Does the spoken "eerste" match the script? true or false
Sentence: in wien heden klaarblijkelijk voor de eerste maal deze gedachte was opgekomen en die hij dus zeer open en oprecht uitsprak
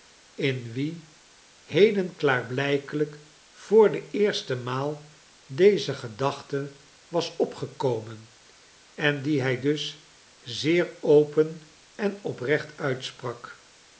true